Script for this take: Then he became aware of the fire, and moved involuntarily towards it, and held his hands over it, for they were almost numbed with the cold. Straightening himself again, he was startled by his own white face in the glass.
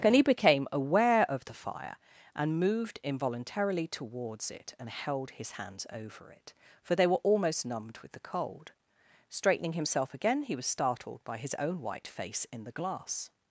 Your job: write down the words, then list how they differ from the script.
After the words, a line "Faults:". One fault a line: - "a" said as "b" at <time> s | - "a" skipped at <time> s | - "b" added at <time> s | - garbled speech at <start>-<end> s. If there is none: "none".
And he became aware of the fire, and moved involuntarily towards it, and held his hands over it, for they were almost numbed with the cold. Straightening himself again, he was startled by his own white face in the glass.
Faults:
- "Then" said as "And" at 0.0 s